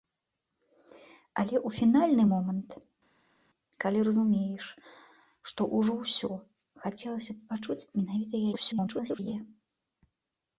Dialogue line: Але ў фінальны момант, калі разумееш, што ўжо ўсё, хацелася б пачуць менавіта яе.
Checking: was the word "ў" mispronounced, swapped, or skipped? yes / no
no